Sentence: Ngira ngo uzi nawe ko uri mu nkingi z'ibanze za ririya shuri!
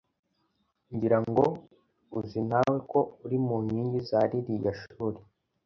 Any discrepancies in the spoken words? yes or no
yes